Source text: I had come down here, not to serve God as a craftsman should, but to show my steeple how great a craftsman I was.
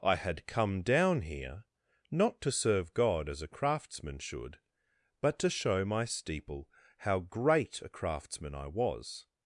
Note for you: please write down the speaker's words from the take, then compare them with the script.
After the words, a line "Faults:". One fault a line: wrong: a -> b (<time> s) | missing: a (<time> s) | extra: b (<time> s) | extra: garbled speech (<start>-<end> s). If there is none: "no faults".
I had come down here, not to serve God as a craftsman should, but to show my steeple how great a craftsman I was.
Faults:
no faults